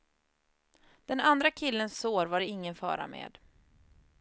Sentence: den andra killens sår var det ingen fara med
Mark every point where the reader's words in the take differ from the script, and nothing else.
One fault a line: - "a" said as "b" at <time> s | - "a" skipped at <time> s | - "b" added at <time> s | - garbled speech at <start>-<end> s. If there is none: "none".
none